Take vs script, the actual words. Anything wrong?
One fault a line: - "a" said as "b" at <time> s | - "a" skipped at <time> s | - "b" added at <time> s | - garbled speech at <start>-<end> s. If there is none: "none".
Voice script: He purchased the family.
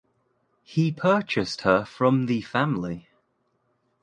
- "her from" added at 1.6 s